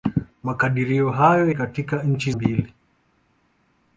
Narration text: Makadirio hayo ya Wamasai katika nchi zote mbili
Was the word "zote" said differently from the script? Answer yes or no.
yes